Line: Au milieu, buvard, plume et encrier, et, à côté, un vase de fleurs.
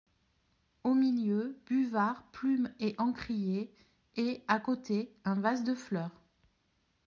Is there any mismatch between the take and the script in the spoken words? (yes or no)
no